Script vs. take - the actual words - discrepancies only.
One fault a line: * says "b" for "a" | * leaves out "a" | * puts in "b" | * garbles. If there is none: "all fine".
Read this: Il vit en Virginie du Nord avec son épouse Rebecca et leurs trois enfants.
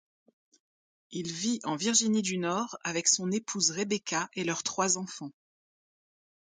all fine